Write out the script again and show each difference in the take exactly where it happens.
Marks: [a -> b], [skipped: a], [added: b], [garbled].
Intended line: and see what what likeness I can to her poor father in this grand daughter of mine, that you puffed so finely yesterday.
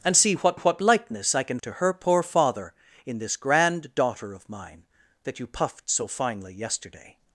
and see what what likeness I can to her poor father in this grand daughter of mine, that you puffed so finely yesterday.